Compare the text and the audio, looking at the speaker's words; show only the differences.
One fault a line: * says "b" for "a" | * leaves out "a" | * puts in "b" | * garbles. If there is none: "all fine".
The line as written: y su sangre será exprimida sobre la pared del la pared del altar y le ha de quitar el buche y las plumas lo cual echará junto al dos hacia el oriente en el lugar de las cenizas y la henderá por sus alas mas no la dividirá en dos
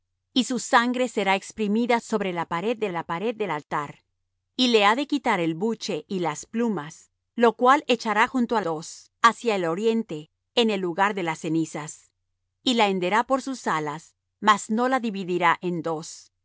all fine